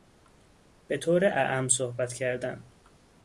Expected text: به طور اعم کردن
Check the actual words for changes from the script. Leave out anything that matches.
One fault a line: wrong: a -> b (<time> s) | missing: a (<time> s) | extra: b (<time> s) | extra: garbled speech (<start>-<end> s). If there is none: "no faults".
extra: صحبت (1.7 s)